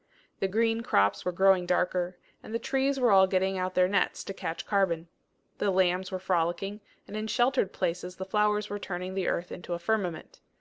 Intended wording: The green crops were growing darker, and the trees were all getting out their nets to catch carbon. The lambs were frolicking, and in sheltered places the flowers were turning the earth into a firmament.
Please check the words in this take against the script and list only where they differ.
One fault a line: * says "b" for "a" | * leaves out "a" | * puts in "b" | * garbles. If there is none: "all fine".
all fine